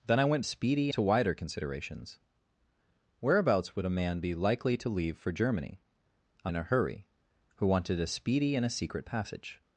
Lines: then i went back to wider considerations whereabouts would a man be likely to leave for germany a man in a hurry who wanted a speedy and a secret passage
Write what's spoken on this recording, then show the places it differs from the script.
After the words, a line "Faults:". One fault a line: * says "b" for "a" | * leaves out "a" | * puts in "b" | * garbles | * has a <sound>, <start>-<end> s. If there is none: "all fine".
then i went speedy to wider considerations whereabouts would a man be likely to leave for germany a in a hurry who wanted a speedy and a secret passage
Faults:
* says "speedy" for "back"
* leaves out "man"